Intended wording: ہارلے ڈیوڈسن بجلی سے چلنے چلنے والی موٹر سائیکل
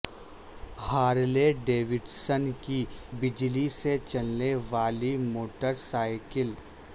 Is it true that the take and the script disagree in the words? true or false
true